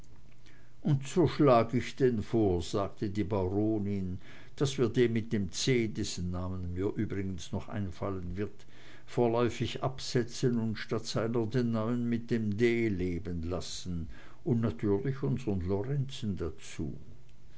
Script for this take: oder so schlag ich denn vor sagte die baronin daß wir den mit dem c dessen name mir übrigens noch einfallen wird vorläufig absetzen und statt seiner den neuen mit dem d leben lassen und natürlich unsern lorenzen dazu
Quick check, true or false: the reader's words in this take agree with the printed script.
false